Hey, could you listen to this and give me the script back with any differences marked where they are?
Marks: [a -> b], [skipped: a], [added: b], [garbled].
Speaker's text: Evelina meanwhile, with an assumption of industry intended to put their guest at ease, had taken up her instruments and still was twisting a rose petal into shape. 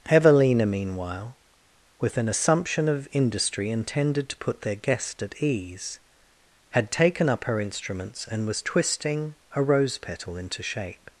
Evelina meanwhile, with an assumption of industry intended to put their guest at ease, had taken up her instruments and [skipped: still] was twisting a rose petal into shape.